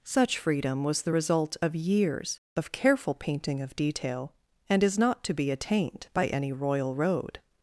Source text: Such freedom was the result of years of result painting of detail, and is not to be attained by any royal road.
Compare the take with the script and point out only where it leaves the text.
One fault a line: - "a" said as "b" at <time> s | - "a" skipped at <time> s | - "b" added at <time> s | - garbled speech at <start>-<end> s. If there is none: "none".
- "result" said as "careful" at 2.7 s